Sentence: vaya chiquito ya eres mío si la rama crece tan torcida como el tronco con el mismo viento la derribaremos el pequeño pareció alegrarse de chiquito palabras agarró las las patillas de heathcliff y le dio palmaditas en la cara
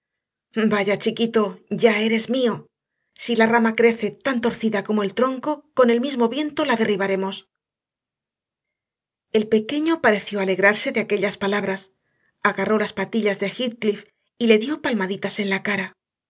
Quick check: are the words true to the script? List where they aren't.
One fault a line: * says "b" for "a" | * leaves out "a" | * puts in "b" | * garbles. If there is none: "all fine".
* says "aquellas" for "chiquito"
* leaves out "las"